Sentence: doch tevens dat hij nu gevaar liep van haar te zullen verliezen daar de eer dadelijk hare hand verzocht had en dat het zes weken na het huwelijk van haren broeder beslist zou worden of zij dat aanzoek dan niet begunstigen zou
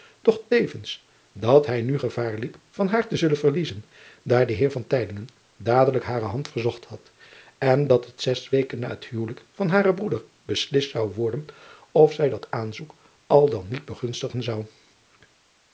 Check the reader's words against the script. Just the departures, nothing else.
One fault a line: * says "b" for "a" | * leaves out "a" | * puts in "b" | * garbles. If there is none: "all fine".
* puts in "al"